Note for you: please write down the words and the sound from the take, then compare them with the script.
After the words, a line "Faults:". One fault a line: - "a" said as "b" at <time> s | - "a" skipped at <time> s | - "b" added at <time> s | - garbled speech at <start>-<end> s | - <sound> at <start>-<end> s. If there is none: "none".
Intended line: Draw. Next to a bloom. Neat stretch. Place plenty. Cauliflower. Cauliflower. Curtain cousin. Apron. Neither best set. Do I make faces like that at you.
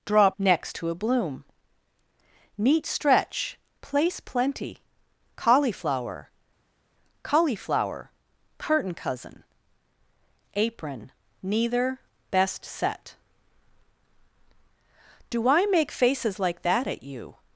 Draw. Next to a bloom. Neat stretch. Place plenty. Cauliflower. Cauliflower. Curtain cousin. Apron. Neither best set. Do I make faces like that at you.
Faults:
none